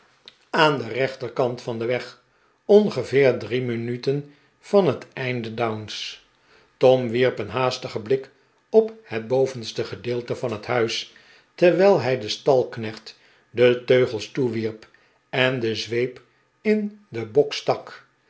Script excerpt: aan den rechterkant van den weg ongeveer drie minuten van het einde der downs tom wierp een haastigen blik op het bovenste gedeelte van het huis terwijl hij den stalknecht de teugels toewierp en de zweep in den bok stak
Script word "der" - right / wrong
wrong